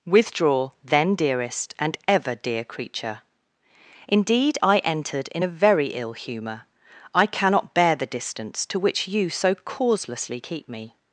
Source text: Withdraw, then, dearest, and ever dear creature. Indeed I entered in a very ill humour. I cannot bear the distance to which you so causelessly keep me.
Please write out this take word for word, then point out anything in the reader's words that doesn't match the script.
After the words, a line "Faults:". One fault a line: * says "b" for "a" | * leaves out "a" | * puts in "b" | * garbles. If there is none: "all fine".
Withdraw, then, dearest, and ever dear creature. Indeed I entered in a very ill humour. I cannot bear the distance to which you so causelessly keep me.
Faults:
all fine